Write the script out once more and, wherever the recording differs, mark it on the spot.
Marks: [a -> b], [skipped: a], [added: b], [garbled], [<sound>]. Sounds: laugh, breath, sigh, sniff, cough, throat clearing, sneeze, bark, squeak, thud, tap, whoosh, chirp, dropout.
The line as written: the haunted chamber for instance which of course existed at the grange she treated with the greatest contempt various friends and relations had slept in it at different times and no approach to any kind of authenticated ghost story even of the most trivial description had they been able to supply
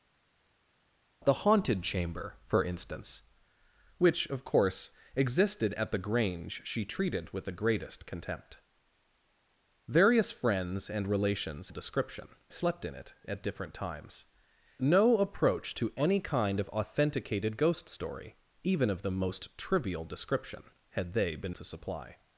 the haunted chamber for instance which of course existed at the grange she treated with the greatest contempt various friends and relations [had -> description] slept in it at different times [skipped: and] no approach to any kind of authenticated ghost story even of the most trivial description had they been [skipped: able] to supply